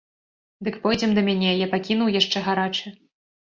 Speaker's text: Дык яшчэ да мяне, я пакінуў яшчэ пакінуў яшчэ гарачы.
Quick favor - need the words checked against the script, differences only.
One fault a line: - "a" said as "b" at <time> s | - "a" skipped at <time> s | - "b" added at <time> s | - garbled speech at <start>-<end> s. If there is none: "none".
- "яшчэ" said as "пойдзем" at 0.8 s
- "пакінуў яшчэ" skipped at 2.5 s